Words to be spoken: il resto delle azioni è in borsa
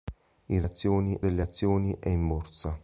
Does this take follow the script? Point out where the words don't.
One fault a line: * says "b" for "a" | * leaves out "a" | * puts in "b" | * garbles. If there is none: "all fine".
* says "azioni" for "resto"